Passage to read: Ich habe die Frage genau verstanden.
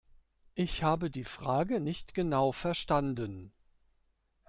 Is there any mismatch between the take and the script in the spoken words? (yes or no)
yes